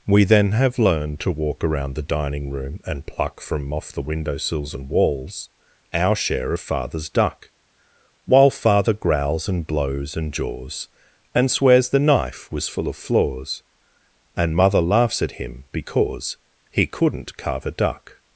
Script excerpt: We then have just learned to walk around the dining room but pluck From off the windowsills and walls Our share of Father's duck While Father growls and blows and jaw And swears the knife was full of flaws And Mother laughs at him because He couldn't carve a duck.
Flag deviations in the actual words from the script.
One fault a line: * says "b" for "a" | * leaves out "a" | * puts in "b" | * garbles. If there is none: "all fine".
* leaves out "just"
* says "and" for "but"
* says "jaws" for "jaw"